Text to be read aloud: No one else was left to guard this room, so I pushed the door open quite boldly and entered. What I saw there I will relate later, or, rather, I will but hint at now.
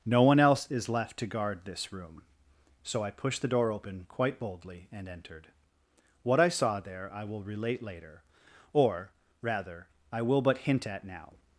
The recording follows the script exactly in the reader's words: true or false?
false